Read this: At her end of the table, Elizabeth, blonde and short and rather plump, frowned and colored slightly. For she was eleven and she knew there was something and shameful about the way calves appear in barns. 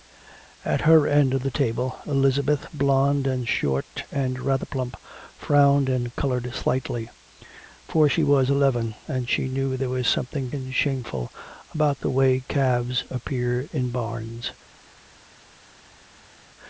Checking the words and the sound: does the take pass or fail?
pass